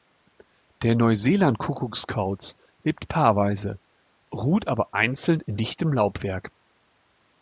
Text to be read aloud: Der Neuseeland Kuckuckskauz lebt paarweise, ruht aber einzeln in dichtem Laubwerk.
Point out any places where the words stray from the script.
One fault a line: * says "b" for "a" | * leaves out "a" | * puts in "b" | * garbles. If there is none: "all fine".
all fine